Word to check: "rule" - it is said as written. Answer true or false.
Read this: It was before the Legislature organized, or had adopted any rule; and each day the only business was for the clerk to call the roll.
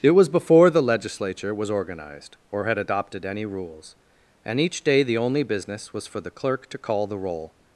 false